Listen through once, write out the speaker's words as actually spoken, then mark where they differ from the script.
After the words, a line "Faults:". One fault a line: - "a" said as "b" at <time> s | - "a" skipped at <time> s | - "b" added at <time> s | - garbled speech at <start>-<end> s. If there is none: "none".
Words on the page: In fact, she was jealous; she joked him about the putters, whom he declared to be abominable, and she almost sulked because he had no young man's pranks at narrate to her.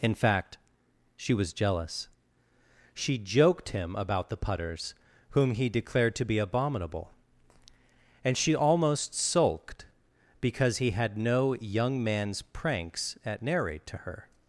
In fact, she was jealous; she joked him about the putters, whom he declared to be abominable, and she almost sulked because he had no young man's pranks at narrate to her.
Faults:
none